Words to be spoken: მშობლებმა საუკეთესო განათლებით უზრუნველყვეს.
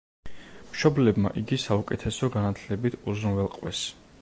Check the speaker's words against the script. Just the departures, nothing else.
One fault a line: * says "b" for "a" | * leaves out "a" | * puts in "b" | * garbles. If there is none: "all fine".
* puts in "იგი"